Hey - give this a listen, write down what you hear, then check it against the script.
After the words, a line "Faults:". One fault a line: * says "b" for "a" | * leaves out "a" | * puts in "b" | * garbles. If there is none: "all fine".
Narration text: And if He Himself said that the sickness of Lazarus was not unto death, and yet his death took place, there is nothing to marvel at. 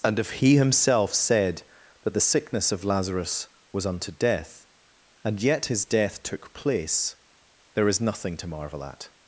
And if He Himself said that the sickness of Lazarus was unto death, and yet his death took place, there is nothing to marvel at.
Faults:
* leaves out "not"